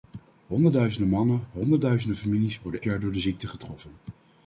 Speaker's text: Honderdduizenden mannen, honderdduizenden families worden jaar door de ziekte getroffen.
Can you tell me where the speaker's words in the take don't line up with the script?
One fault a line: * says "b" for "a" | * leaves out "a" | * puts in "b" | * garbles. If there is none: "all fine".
all fine